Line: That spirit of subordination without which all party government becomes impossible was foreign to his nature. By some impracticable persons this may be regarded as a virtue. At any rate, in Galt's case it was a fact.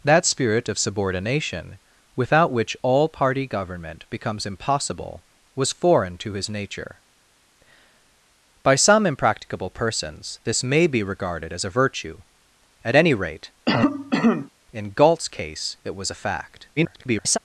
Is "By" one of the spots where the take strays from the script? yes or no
no